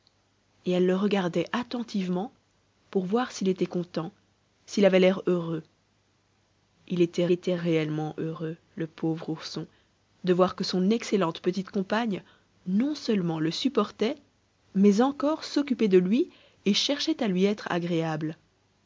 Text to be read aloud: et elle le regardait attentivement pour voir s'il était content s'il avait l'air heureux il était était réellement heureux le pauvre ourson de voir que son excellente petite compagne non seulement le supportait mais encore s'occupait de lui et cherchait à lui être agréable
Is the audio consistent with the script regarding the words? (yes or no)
yes